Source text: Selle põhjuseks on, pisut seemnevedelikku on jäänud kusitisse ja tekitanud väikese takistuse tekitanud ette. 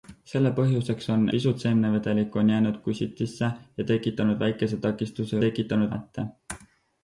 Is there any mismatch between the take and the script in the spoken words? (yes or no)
no